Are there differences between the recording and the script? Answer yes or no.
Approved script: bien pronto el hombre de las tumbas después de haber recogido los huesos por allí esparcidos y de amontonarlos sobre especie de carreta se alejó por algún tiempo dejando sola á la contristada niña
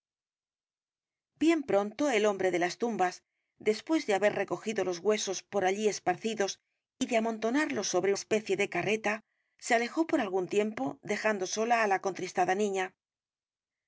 no